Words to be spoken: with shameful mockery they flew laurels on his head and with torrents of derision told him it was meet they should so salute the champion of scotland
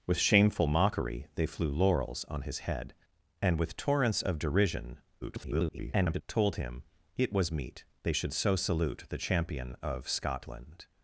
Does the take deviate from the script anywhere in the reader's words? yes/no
yes